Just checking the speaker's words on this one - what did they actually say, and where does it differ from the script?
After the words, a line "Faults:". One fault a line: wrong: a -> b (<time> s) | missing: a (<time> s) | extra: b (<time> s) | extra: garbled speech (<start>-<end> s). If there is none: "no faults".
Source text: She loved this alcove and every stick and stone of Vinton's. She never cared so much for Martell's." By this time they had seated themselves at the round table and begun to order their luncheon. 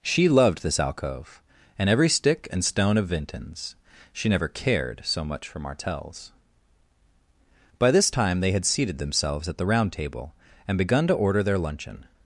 She loved this alcove and every stick and stone of Vinton's. She never cared so much for Martell's." By this time they had seated themselves at the round table and begun to order their luncheon.
Faults:
no faults